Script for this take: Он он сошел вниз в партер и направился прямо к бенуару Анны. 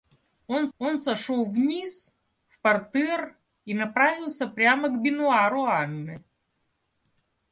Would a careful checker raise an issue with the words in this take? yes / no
no